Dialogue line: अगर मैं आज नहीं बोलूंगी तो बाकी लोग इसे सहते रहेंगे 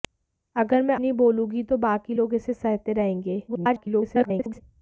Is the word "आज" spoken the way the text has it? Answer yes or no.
no